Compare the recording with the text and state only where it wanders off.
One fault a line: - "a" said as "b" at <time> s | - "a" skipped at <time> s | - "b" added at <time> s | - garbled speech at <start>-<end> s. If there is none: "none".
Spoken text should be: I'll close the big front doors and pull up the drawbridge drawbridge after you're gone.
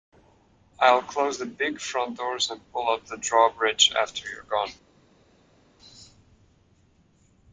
- "drawbridge" skipped at 3.9 s